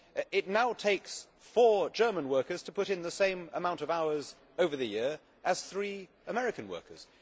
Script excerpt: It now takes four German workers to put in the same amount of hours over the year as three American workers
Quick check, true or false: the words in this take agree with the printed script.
true